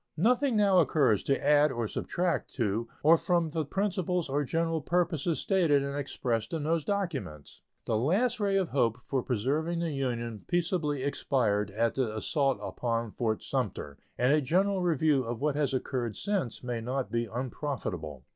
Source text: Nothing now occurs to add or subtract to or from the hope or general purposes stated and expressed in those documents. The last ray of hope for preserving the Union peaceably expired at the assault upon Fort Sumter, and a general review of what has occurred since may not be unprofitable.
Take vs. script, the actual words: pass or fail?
fail